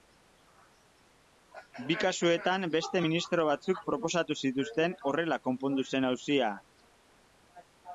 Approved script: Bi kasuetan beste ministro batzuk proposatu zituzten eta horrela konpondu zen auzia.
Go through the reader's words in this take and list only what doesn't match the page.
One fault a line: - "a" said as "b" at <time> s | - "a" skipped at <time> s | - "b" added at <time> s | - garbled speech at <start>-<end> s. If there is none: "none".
- "eta" skipped at 4.9 s